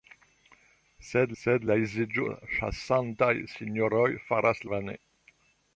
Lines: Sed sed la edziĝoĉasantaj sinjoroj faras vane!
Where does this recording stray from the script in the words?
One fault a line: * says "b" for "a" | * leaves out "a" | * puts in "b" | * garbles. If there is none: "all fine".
all fine